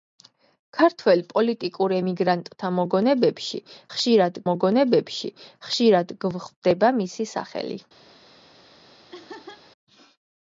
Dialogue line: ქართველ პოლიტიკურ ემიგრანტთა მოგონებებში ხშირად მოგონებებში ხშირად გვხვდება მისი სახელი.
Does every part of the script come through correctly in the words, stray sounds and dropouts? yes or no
no